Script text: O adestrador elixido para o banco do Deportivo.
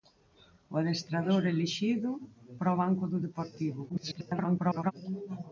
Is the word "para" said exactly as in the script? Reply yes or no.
yes